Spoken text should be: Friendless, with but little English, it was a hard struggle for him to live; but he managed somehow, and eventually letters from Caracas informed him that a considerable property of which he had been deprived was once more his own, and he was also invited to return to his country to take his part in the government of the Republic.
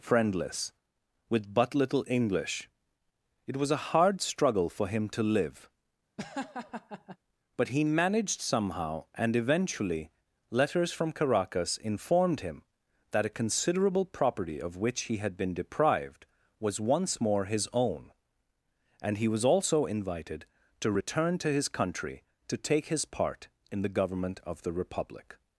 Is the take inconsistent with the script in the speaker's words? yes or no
no